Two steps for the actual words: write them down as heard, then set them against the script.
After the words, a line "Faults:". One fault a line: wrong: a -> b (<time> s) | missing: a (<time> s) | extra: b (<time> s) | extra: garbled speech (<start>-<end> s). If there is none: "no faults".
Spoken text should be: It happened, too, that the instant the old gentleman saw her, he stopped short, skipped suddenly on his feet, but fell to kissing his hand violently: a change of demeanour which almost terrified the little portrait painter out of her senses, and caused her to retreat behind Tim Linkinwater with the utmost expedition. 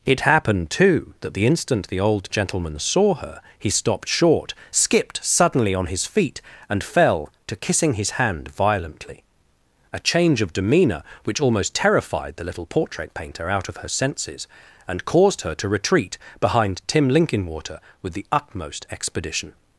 It happened, too, that the instant the old gentleman saw her, he stopped short, skipped suddenly on his feet, and fell to kissing his hand violently: a change of demeanour which almost terrified the little portrait painter out of her senses, and caused her to retreat behind Tim Linkinwater with the utmost expedition.
Faults:
wrong: but -> and (6.7 s)